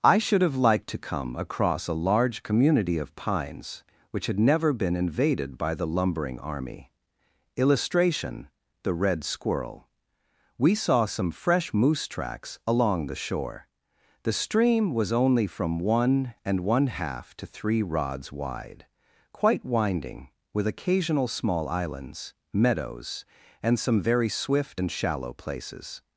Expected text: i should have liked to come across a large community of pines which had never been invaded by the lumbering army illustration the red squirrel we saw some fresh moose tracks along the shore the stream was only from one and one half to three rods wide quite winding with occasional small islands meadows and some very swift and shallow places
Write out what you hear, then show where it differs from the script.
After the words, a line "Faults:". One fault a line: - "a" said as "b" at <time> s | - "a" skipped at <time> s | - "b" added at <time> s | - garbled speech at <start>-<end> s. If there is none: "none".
i should have liked to come across a large community of pines which had never been invaded by the lumbering army illustration the red squirrel we saw some fresh moose tracks along the shore the stream was only from one and one half to three rods wide quite winding with occasional small islands meadows and some very swift and shallow places
Faults:
none